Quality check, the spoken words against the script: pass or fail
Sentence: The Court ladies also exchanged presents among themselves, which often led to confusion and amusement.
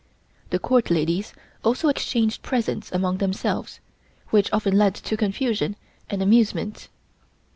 pass